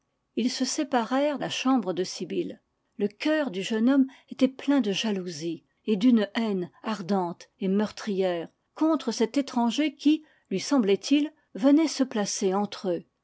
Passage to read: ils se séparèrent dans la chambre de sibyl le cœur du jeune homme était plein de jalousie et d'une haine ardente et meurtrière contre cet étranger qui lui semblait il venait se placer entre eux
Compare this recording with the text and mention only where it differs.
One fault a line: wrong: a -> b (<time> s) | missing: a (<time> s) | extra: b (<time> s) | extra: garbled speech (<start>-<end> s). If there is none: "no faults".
missing: dans (1.4 s)